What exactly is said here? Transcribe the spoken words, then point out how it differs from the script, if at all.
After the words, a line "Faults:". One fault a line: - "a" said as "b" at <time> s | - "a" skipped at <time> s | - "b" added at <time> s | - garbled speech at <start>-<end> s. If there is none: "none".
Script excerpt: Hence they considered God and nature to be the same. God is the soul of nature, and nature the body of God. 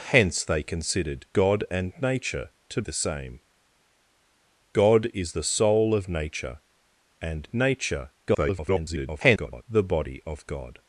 Hence they considered God and nature to the same. God is the soul of nature, and nature [garbled] the body of God.
Faults:
- "be" skipped at 2.8 s
- garbled speech at 8.3-9.6 s